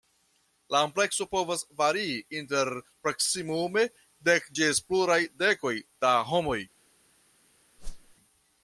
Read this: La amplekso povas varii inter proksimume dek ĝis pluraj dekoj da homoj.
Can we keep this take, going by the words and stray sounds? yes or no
no